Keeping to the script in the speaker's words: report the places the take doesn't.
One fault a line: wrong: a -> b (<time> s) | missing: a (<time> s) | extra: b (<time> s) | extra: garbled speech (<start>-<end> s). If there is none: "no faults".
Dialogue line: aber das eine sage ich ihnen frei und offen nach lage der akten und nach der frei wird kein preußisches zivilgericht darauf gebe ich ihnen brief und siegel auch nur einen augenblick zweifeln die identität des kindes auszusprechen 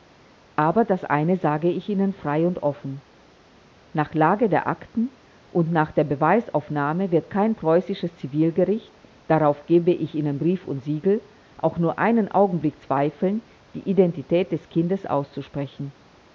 wrong: frei -> beweisaufnahme (6.0 s)